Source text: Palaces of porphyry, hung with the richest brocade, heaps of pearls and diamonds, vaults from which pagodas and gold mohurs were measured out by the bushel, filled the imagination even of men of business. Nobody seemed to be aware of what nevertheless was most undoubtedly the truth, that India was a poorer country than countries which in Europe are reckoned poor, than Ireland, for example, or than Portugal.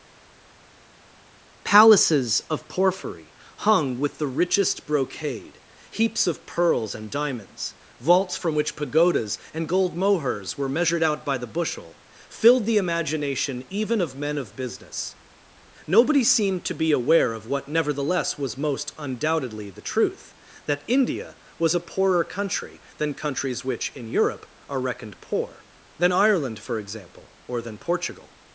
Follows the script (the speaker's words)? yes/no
yes